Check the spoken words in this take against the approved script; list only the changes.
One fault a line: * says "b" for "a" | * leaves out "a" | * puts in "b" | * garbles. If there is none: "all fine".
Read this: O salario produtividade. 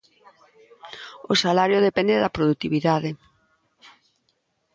* puts in "depende da"